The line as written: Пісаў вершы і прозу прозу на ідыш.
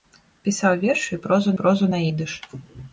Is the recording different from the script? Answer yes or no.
no